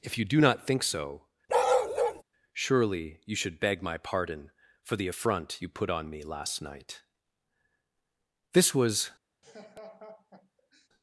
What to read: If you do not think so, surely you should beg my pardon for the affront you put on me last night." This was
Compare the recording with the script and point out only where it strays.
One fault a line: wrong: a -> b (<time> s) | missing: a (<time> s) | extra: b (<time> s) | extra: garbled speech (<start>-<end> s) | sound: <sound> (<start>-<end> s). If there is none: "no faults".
sound: bark (1.5-2.2 s)
sound: laugh (9.4-10.9 s)